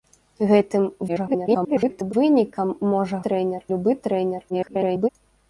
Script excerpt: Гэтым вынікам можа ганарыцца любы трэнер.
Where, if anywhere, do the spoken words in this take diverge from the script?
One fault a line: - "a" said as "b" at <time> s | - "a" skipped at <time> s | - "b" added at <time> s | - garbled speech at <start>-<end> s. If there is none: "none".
- garbled speech at 1.1-2.1 s
- "ганарыцца" said as "трэнер" at 3.3 s
- garbled speech at 4.5-5.1 s